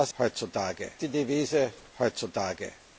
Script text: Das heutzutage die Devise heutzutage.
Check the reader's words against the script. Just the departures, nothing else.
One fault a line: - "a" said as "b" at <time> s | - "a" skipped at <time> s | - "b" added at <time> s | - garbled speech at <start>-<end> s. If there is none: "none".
none